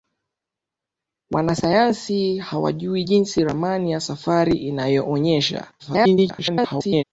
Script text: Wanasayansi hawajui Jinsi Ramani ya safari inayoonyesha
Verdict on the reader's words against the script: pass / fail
fail